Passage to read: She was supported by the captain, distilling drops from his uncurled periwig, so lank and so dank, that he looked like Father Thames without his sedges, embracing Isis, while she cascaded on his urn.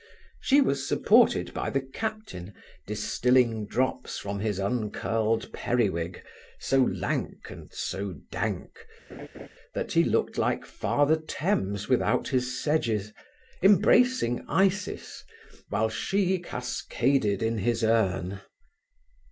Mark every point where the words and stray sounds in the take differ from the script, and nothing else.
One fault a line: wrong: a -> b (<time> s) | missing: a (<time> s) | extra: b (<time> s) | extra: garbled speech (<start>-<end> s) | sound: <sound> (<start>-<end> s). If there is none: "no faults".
sound: laugh (9.1-9.5 s)
wrong: on -> in (17.4 s)